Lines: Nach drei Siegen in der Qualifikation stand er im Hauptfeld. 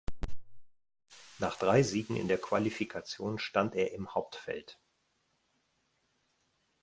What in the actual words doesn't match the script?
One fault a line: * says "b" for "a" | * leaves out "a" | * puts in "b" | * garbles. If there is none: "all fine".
all fine